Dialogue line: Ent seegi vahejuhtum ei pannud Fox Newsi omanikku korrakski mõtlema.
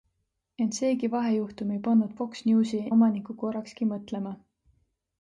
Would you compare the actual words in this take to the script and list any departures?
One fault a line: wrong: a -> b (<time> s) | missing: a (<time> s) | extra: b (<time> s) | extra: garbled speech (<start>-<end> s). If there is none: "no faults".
no faults